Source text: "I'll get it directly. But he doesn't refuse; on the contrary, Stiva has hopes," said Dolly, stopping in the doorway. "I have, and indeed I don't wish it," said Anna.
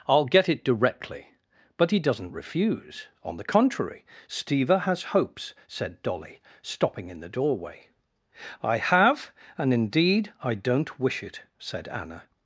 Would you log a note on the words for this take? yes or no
no